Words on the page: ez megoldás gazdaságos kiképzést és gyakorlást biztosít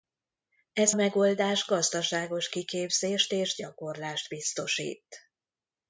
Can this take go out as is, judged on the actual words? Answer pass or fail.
pass